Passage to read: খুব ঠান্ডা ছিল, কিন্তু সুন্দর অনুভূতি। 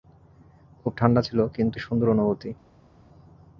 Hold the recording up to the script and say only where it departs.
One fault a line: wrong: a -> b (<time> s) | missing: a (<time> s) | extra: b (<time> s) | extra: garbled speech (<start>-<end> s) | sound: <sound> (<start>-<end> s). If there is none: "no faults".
no faults